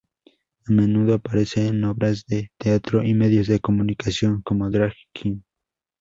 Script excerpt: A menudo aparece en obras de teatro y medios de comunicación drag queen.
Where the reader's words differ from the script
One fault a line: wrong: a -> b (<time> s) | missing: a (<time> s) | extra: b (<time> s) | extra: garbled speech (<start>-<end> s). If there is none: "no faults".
extra: como (4.4 s)